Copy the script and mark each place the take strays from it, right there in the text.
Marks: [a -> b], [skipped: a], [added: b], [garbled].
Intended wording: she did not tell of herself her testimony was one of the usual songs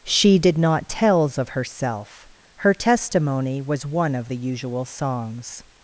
she did not [tell -> tells] of herself her testimony was one of the usual songs